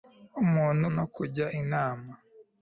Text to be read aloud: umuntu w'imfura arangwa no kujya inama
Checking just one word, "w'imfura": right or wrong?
wrong